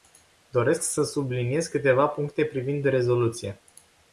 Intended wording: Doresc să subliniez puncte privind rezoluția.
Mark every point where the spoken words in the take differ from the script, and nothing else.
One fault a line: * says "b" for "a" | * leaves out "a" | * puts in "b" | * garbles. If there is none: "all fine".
* puts in "câteva"